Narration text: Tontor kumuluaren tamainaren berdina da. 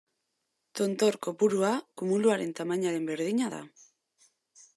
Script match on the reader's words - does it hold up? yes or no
no